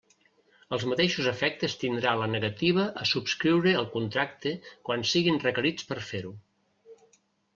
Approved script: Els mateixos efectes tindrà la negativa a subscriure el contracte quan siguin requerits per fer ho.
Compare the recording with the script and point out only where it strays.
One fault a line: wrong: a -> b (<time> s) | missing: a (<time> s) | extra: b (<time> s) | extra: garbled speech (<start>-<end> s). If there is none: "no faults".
no faults